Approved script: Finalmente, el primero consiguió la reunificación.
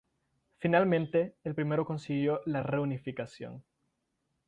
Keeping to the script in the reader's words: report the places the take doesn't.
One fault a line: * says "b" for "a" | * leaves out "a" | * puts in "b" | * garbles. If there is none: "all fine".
all fine